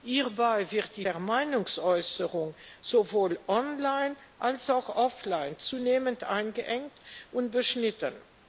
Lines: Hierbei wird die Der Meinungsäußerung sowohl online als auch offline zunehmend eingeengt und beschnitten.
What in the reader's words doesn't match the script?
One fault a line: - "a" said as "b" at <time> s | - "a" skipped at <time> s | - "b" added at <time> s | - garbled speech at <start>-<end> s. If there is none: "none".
none